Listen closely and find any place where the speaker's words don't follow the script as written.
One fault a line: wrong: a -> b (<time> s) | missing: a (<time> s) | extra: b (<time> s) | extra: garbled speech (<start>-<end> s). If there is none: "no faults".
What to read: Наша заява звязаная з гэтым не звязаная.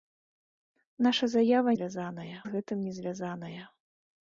no faults